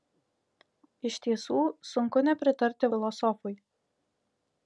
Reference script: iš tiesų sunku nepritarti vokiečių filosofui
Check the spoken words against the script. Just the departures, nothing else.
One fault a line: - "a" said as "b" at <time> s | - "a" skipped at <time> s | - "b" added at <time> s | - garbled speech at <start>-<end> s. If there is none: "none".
- "vokiečių" skipped at 2.9 s